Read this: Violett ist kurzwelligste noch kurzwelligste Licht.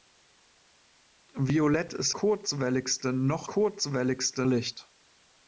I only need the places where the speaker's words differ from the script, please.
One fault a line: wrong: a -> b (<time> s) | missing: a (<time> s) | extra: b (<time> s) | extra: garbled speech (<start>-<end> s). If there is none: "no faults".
no faults